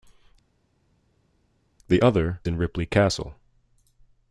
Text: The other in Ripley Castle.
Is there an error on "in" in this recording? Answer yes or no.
no